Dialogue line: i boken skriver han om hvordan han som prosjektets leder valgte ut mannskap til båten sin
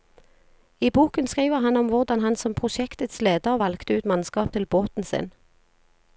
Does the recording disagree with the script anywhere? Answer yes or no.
no